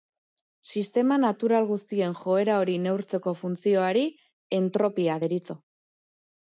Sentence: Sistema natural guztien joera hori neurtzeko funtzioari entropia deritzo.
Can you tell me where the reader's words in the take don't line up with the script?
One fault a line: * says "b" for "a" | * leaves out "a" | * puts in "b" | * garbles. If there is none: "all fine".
all fine